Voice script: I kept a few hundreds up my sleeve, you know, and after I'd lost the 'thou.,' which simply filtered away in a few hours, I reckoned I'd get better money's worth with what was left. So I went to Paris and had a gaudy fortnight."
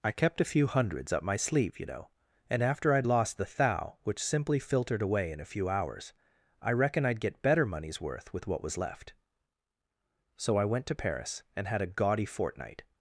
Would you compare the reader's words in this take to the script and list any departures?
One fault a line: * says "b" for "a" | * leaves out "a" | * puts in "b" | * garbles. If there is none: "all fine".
* says "reckon" for "reckoned"